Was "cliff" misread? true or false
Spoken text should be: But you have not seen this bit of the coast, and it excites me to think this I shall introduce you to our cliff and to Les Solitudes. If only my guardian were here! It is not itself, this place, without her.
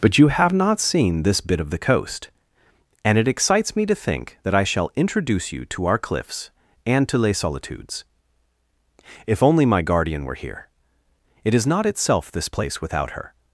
true